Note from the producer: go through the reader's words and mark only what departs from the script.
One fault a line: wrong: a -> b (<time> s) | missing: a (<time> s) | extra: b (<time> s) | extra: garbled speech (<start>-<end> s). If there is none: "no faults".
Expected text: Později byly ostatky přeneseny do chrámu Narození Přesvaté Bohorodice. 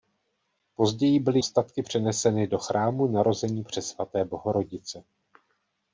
no faults